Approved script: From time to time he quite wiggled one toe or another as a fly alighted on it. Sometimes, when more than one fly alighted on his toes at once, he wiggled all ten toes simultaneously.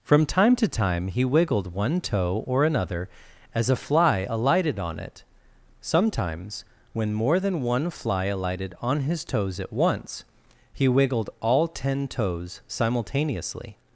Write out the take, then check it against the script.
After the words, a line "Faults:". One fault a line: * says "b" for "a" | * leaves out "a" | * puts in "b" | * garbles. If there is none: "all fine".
From time to time he wiggled one toe or another as a fly alighted on it. Sometimes, when more than one fly alighted on his toes at once, he wiggled all ten toes simultaneously.
Faults:
* leaves out "quite"